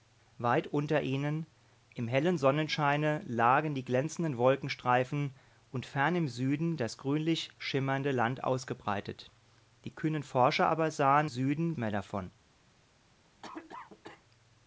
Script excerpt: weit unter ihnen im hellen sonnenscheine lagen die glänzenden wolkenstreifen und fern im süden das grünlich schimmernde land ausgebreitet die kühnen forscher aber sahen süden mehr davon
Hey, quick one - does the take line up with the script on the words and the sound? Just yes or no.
no